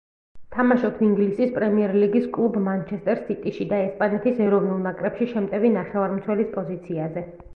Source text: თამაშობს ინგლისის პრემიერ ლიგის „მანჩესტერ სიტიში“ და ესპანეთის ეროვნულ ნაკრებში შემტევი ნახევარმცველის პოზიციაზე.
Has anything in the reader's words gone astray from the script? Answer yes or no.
yes